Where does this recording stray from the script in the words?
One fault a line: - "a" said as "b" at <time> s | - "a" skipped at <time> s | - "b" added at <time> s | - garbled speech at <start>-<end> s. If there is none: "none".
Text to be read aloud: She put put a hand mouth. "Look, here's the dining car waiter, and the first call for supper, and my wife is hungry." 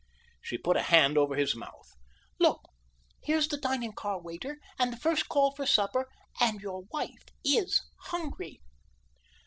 - "put" skipped at 0.8 s
- "over his" added at 1.1 s
- "my" said as "your" at 6.6 s